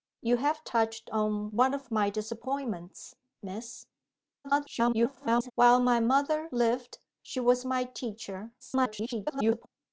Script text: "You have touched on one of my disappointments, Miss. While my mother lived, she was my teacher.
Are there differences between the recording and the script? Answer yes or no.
yes